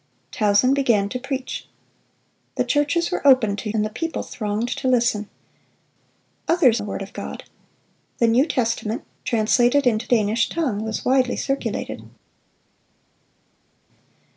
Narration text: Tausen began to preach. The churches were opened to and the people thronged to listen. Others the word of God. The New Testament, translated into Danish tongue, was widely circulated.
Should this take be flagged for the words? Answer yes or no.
no